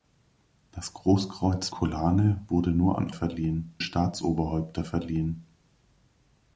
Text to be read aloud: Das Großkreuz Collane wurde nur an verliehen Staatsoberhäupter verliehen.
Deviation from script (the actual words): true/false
false